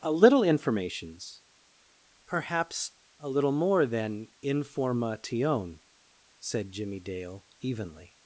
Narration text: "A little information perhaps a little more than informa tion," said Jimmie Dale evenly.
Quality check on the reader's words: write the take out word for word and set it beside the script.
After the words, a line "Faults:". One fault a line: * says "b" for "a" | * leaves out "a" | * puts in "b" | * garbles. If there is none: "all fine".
"A little informations perhaps a little more than informa tion," said Jimmie Dale evenly.
Faults:
* says "informations" for "information"